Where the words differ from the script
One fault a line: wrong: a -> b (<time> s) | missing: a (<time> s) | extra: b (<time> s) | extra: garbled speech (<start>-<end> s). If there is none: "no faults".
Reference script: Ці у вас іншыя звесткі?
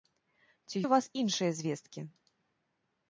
no faults